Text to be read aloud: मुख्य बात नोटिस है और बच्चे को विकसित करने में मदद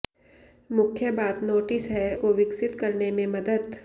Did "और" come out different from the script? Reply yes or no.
yes